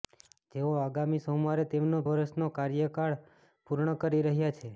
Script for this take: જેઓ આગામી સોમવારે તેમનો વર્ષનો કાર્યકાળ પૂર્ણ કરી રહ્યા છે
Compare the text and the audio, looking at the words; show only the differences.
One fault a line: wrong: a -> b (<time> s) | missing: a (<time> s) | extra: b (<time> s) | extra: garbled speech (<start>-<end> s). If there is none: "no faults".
no faults